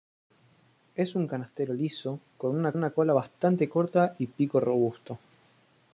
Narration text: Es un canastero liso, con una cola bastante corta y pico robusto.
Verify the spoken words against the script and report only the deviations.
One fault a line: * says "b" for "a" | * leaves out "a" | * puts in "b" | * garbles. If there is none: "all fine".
* puts in "una"